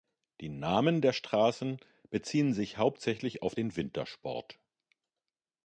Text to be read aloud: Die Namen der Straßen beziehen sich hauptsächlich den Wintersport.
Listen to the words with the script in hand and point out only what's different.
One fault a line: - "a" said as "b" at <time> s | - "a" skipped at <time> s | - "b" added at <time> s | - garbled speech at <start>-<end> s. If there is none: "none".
- "auf" added at 3.4 s